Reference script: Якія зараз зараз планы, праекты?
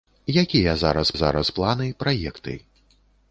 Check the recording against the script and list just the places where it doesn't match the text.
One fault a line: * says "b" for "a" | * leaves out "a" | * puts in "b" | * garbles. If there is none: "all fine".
all fine